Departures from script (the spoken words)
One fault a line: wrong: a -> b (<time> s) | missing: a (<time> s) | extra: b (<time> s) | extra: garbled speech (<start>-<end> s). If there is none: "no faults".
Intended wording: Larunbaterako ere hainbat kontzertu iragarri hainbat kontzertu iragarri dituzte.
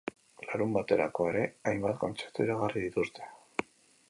missing: hainbat kontzertu iragarri (2.9 s)